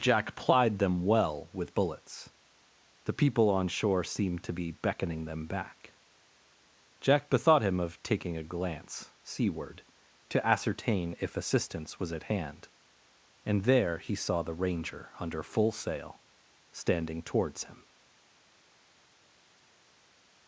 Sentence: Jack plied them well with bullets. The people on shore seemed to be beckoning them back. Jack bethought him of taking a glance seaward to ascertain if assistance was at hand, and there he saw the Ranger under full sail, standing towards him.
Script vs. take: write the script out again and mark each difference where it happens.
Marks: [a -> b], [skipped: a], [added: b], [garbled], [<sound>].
Jack plied them well with bullets. The people on shore seemed to be beckoning them back. Jack bethought him of taking a glance seaward to ascertain if assistance was at hand, and there he saw the Ranger under full sail, standing towards him.